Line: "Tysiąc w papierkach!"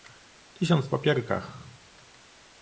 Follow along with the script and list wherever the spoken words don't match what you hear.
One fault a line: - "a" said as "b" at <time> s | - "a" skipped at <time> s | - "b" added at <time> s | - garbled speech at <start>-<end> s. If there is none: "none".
none